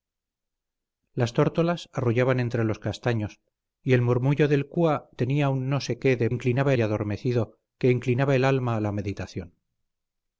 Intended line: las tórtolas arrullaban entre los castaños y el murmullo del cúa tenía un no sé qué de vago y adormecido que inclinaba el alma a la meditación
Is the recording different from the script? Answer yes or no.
yes